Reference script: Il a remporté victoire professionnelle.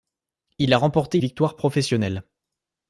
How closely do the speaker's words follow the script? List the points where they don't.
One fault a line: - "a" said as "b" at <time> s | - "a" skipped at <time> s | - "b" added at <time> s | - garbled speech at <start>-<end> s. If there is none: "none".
none